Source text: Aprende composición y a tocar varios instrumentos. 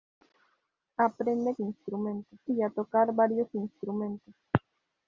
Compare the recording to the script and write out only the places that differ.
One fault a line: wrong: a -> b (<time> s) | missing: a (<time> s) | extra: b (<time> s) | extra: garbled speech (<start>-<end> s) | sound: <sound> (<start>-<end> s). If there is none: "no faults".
wrong: composición -> instrumentos (1.6 s)